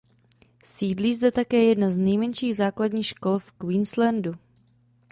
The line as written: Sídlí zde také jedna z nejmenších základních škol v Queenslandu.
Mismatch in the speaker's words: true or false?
false